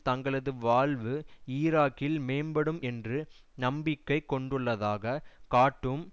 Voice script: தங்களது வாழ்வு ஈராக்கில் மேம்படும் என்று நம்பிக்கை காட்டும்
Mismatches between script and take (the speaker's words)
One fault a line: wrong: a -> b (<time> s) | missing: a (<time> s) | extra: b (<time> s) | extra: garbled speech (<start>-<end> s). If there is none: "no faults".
extra: கொண்டுள்ளதாக (4.3 s)